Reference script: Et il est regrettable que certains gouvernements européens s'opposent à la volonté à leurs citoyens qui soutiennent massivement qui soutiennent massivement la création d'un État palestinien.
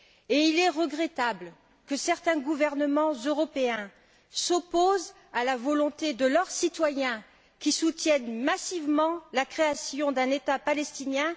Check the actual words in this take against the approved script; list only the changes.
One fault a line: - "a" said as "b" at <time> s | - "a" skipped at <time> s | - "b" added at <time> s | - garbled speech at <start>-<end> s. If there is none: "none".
- "à" said as "de" at 6.1 s
- "qui soutiennent massivement" skipped at 9.2 s